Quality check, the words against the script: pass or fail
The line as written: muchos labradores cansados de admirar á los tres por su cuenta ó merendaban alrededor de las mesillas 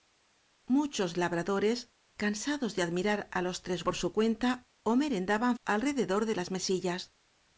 pass